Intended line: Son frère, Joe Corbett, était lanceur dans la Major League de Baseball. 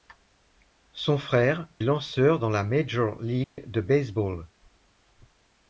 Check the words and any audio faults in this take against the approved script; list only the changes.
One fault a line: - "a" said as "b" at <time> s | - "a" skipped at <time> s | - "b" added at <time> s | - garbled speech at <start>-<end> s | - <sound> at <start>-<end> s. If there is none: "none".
- "Joe Corbett était" skipped at 1.7 s
- dropout at 3.4-3.6 s